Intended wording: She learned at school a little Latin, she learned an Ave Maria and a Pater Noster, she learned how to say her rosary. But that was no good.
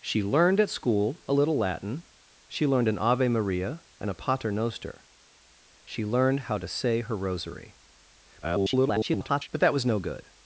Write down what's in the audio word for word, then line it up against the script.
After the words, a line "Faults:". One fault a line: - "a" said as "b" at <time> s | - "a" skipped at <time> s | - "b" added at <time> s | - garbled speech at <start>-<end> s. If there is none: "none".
She learned at school a little Latin, she learned an Ave Maria and a Pater Noster, she learned how to say her rosary. [garbled] But that was no good.
Faults:
- garbled speech at 8.4-9.5 s